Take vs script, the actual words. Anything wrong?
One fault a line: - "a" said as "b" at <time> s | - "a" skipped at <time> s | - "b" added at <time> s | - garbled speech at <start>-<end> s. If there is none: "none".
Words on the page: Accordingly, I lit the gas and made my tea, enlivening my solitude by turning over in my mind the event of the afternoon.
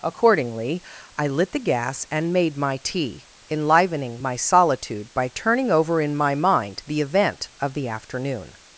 none